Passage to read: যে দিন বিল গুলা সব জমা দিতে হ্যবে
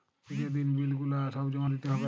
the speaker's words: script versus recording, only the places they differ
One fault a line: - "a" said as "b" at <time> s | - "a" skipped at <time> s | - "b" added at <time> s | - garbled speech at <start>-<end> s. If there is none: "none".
none